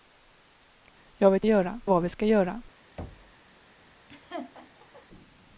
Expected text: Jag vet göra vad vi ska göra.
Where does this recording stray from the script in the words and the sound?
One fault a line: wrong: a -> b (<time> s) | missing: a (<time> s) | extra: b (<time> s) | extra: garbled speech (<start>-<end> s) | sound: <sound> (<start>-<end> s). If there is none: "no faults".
sound: thud (3.0-3.4 s)
sound: laugh (4.1-5.1 s)